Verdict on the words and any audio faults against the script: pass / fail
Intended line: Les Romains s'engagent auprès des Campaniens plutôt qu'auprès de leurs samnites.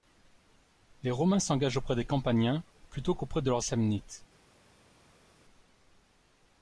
pass